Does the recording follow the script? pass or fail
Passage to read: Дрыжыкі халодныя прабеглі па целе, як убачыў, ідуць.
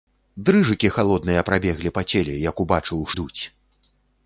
pass